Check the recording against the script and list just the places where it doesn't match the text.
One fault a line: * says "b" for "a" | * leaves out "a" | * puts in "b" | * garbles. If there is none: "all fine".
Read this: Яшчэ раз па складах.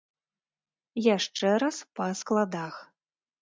all fine